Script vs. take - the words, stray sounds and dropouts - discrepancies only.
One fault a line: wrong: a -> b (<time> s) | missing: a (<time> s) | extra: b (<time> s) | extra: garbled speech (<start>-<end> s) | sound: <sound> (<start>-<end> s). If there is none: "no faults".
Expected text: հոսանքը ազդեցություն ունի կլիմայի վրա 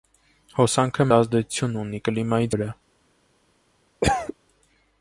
sound: cough (4.0-4.3 s)